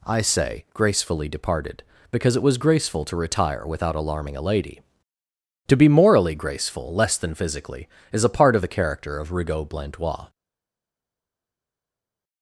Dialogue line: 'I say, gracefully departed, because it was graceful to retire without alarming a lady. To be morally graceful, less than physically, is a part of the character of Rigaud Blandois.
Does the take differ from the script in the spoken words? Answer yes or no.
no